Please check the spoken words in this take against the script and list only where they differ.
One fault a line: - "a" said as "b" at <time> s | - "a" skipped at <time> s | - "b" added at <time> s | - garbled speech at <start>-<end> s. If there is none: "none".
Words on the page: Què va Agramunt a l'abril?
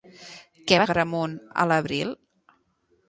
none